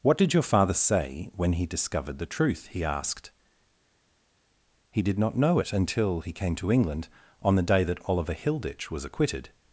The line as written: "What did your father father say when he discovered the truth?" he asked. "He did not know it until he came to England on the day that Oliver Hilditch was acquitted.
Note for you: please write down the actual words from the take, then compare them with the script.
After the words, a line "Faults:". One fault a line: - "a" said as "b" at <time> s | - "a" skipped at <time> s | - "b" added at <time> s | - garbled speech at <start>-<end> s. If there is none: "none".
"What did your father say when he discovered the truth?" he asked. "He did not know it until he came to England on the day that Oliver Hilditch was acquitted.
Faults:
- "father" skipped at 0.7 s